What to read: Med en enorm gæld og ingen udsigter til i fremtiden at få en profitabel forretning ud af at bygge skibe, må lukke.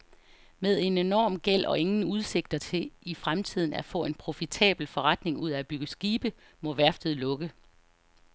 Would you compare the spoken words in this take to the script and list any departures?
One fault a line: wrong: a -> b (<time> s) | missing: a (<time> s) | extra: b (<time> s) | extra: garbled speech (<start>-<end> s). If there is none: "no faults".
extra: værftet (6.7 s)